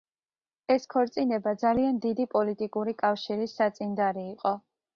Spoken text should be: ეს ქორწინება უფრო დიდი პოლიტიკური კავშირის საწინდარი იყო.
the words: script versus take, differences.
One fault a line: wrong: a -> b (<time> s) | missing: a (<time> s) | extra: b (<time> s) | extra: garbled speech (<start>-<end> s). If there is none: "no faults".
wrong: უფრო -> ძალიან (1.6 s)